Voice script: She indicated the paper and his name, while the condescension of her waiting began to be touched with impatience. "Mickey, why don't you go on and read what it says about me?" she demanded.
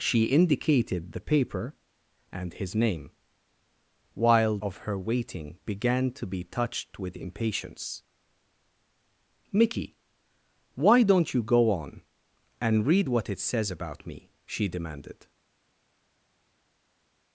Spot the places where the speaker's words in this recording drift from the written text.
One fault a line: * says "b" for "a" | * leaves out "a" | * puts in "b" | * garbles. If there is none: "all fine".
* leaves out "the condescension"